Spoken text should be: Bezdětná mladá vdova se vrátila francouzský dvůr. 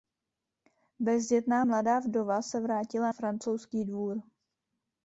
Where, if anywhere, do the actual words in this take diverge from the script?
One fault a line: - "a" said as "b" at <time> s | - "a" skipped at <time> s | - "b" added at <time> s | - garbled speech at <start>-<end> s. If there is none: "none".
none